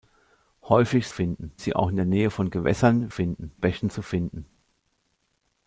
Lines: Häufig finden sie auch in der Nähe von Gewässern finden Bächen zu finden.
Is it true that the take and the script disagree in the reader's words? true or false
false